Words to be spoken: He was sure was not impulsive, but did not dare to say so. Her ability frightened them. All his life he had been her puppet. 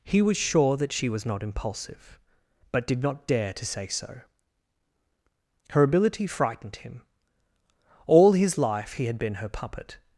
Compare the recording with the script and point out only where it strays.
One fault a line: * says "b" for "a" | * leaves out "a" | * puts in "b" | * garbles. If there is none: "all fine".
* puts in "that she"
* says "him" for "them"